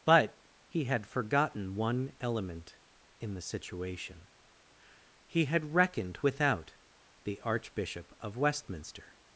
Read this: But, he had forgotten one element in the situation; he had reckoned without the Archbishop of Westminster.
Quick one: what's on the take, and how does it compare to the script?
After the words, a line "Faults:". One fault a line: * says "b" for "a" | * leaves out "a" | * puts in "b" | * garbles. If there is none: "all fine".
But, he had forgotten one element in the situation; he had reckoned without the Archbishop of Westminster.
Faults:
all fine